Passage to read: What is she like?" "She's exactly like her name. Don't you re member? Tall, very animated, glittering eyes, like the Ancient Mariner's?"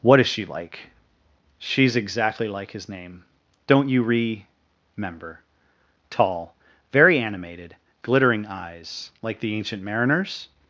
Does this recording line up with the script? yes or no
no